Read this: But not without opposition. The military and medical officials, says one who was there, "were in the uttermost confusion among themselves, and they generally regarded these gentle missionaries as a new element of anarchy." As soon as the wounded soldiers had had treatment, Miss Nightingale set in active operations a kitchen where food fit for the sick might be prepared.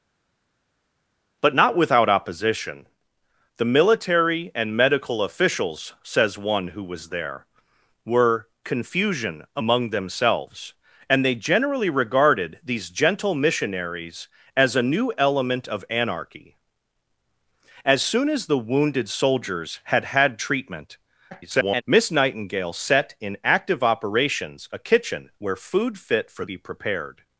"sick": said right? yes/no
no